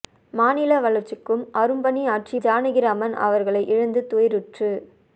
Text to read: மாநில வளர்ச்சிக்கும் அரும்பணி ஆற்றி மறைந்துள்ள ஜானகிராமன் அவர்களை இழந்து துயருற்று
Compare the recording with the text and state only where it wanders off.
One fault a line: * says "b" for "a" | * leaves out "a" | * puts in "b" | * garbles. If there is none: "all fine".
* leaves out "மறைந்துள்ள"